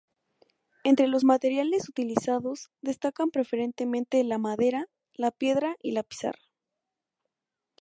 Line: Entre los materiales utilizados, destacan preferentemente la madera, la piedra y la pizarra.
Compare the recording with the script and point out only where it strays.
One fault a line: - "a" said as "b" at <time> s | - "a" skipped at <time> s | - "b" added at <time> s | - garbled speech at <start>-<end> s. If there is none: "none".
none